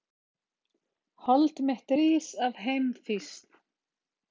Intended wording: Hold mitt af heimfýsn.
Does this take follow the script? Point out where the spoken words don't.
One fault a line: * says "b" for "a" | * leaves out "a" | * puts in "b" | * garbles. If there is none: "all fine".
* puts in "rís"